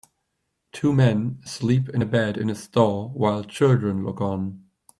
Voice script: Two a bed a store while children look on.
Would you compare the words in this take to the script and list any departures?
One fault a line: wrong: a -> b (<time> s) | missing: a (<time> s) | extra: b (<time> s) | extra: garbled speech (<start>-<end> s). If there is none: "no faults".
extra: men sleep in (0.9 s)
extra: in (2.4 s)